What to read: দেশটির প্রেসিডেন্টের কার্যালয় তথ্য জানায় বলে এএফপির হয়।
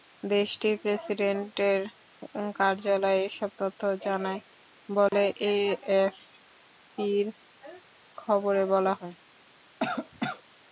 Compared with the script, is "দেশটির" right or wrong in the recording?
right